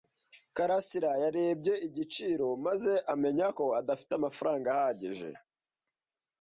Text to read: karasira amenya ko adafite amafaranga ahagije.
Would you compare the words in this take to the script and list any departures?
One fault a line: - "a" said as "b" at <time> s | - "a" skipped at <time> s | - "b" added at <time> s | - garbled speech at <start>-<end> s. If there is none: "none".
- "yarebye igiciro maze" added at 1.2 s